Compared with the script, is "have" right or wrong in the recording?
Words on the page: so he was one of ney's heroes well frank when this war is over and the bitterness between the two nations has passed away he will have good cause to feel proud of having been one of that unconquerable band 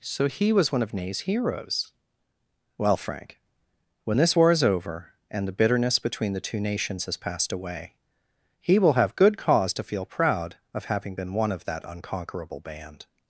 right